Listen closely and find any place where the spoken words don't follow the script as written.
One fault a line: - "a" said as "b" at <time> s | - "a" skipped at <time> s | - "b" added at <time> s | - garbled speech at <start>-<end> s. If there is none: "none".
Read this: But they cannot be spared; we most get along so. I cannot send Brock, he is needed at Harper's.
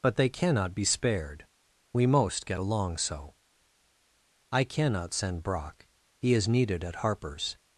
none